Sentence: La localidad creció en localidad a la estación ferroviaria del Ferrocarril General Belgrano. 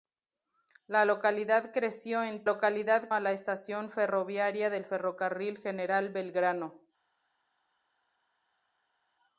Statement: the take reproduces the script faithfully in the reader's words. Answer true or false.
true